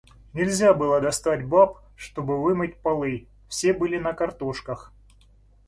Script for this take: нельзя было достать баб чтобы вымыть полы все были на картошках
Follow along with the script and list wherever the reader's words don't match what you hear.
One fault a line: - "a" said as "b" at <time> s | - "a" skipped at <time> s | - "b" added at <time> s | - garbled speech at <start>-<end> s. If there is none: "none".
none